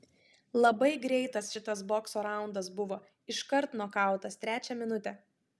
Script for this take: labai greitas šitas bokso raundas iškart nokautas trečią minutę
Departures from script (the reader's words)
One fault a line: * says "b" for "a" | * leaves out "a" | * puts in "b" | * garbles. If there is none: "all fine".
* puts in "buvo"